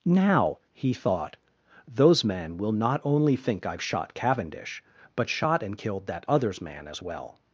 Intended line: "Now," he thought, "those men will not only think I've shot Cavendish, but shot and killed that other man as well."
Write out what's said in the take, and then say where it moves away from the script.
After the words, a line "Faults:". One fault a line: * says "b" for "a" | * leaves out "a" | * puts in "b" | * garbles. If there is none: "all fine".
"Now," he thought, "those men will not only think I've shot Cavendish, but shot and killed that others man as well."
Faults:
* says "others" for "other"